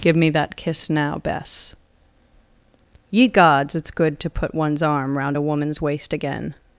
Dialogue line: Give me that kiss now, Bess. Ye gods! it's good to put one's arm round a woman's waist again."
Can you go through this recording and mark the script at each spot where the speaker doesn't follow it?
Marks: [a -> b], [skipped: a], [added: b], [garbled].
Give me that kiss now, Bess. Ye gods! it's good to put one's arm round a woman's waist again."